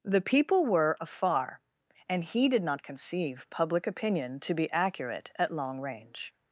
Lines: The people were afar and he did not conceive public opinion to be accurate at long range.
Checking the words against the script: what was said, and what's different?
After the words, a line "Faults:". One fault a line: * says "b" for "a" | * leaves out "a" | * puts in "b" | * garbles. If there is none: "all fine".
The people were afar and he did not conceive public opinion to be accurate at long range.
Faults:
all fine